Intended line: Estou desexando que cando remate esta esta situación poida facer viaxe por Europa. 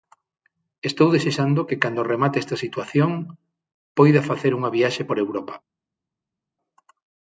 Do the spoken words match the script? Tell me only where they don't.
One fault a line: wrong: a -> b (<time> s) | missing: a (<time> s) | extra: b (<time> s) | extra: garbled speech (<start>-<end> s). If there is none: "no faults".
missing: esta (2.6 s)
extra: unha (4.6 s)